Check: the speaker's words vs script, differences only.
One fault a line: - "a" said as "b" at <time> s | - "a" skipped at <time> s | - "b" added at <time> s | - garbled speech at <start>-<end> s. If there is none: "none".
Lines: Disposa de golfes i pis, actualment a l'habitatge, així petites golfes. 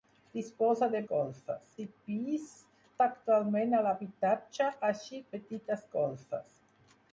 none